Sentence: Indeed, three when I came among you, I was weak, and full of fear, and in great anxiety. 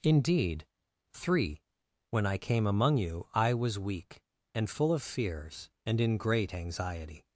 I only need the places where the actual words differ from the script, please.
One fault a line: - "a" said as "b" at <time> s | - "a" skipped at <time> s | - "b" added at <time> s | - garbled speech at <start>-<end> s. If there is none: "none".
- "fear" said as "fears" at 5.0 s